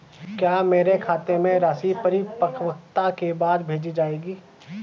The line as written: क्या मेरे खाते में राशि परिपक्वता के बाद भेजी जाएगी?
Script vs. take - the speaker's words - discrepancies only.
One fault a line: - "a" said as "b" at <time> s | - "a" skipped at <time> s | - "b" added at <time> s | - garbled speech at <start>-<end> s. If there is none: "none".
none